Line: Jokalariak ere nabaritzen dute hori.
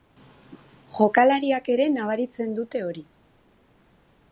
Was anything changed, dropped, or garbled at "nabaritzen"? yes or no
no